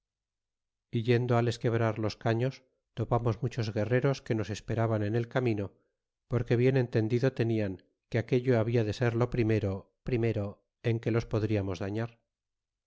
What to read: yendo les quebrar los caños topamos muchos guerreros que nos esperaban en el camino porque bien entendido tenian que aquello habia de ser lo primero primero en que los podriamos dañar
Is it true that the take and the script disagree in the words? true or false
false